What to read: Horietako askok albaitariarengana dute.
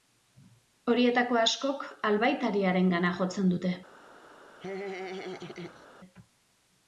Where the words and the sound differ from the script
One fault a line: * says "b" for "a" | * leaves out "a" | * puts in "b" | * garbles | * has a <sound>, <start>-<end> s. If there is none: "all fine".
* puts in "jotzen"
* has a laugh, 4.6-5.9 s